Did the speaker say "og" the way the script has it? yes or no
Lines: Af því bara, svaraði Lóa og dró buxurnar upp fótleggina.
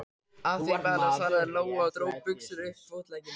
yes